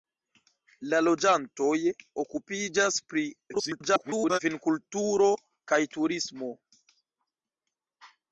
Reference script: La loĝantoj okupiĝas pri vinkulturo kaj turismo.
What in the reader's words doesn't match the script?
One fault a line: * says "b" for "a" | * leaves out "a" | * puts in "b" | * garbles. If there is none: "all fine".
* garbles